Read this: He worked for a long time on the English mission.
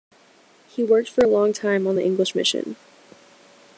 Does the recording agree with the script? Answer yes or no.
yes